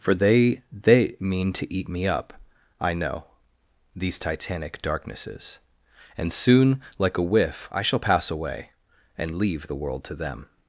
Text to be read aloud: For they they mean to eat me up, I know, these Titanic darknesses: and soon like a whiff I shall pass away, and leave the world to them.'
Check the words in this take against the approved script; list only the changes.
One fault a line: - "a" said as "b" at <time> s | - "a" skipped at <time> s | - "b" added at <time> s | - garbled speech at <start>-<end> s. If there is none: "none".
none